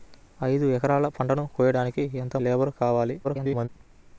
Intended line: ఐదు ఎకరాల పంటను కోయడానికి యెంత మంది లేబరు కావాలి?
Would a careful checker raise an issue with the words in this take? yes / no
yes